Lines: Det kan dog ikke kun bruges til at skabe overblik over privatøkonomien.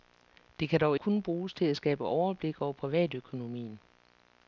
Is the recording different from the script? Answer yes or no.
yes